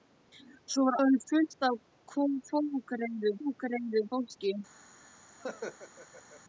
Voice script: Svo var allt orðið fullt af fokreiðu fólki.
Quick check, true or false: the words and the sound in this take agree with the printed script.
false